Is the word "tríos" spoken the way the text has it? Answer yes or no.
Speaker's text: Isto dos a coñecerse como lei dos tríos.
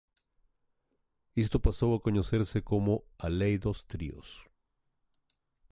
yes